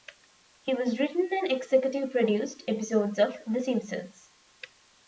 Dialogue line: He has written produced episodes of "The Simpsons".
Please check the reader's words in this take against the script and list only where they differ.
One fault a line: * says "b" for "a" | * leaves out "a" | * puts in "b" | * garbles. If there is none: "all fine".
* puts in "and executive"